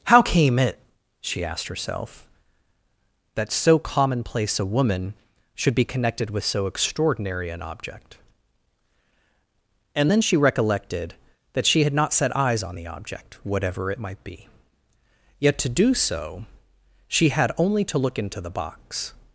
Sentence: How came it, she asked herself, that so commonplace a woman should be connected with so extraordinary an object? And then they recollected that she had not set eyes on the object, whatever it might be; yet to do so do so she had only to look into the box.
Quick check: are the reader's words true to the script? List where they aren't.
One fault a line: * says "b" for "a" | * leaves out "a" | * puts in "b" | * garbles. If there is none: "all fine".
* says "she" for "they"
* leaves out "do so"